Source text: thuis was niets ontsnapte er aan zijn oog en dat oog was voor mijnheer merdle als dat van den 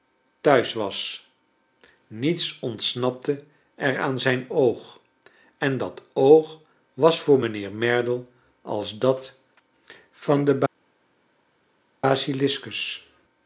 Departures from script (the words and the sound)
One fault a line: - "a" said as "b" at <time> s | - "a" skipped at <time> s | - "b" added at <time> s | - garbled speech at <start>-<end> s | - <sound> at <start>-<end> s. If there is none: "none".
none